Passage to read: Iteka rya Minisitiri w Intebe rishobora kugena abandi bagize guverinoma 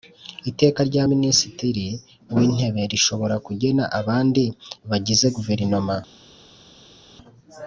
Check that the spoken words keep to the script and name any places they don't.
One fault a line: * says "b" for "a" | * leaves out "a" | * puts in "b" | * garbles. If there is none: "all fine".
all fine